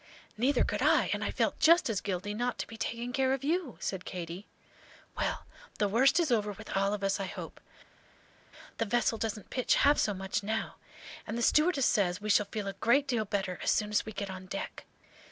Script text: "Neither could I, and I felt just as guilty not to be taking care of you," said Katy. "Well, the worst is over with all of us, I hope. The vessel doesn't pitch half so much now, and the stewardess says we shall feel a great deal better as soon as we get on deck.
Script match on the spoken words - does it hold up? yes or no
yes